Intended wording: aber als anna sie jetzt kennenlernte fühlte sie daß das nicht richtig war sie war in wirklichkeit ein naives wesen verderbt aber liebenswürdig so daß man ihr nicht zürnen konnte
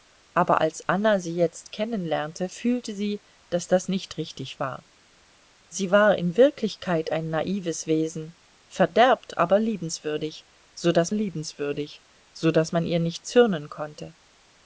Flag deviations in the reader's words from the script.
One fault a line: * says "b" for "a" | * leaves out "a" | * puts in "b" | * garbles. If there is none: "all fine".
* puts in "liebenswürdig so daß"